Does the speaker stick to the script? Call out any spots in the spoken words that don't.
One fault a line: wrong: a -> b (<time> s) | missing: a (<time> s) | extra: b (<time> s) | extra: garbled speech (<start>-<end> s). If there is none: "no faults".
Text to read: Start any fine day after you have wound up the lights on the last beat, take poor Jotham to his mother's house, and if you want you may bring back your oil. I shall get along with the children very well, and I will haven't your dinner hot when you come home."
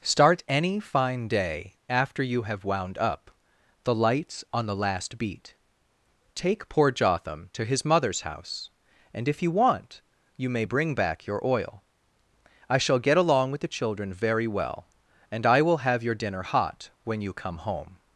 wrong: haven't -> have (15.8 s)